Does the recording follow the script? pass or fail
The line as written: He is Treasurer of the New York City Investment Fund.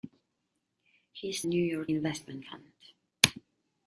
fail